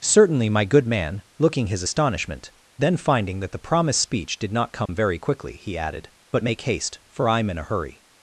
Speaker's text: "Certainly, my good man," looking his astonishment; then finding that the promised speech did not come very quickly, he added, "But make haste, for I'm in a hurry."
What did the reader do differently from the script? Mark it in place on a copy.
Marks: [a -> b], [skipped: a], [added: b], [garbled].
"Certainly, my good man," looking his astonishment; then finding that the promised speech did not come very quickly, he added, "But make haste, for I'm in a hurry."